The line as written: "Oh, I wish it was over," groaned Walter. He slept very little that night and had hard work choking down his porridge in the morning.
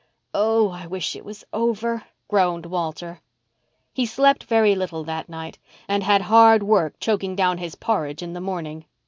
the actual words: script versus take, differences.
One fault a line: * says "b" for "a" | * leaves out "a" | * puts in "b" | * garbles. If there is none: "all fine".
all fine